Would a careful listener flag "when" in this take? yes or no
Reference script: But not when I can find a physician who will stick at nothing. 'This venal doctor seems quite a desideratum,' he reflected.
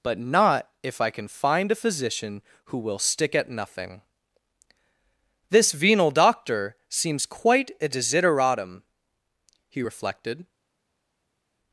yes